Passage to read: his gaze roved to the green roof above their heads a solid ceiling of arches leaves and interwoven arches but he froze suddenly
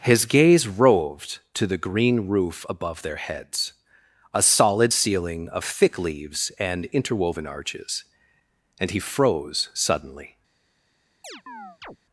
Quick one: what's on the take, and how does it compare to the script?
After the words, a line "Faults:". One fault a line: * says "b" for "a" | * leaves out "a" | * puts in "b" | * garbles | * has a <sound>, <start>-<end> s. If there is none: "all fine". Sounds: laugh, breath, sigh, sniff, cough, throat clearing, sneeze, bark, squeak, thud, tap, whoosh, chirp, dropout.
his gaze roved to the green roof above their heads a solid ceiling of thick leaves and interwoven arches and he froze suddenly
Faults:
* says "thick" for "arches"
* says "and" for "but"
* has a chirp, 11.2-12.0 s